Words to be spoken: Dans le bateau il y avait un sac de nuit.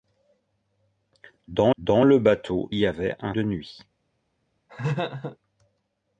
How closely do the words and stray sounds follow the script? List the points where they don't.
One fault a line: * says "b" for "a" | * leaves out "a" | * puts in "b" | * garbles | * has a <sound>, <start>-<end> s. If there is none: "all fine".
* puts in "dans"
* leaves out "il"
* leaves out "sac"
* has a laugh, 4.7-5.4 s